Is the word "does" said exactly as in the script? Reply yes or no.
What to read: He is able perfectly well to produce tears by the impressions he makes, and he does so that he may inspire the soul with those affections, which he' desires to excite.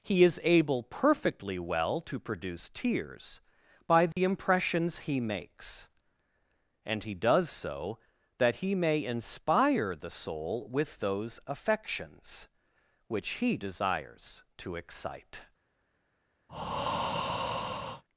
yes